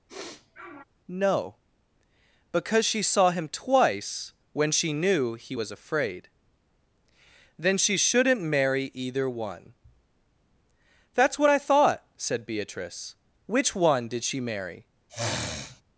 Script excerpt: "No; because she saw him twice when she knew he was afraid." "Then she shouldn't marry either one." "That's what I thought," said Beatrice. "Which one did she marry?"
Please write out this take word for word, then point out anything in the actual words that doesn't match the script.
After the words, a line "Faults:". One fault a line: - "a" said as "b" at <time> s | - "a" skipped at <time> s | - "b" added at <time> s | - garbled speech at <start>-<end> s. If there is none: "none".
"No; because she saw him twice when she knew he was afraid." "Then she shouldn't marry either one." "That's what I thought," said Beatrice. "Which one did she marry?"
Faults:
none